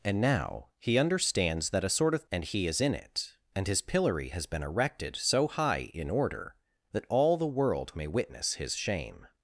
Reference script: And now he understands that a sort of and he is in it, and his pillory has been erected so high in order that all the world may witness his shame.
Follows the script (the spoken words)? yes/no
yes